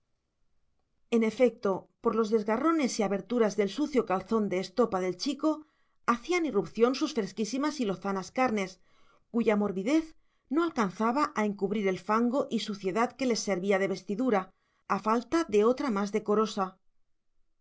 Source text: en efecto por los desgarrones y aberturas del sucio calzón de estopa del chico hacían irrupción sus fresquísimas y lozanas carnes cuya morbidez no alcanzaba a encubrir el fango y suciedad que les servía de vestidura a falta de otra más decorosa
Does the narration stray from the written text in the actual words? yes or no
no